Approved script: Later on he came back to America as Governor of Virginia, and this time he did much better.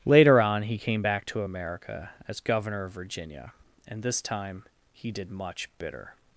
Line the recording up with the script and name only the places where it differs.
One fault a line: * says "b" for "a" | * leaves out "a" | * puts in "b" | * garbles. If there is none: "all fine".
* says "bitter" for "better"